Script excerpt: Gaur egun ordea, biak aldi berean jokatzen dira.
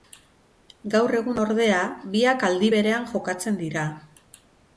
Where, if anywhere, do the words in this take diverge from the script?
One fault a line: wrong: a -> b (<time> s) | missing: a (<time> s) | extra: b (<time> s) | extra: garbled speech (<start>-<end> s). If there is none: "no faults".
no faults